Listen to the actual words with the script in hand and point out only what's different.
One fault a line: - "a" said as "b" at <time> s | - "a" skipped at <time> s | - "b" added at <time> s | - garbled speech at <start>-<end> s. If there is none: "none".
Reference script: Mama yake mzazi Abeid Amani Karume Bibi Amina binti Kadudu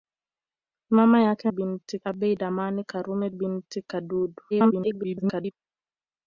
- "mzazi" said as "binti" at 1.5 s
- "Bibi Amina" skipped at 3.3 s
- garbled speech at 4.5-5.5 s